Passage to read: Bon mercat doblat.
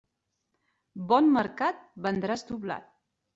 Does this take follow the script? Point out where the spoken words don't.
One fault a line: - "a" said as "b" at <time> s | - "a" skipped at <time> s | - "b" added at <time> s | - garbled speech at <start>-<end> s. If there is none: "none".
- "vendràs" added at 2.1 s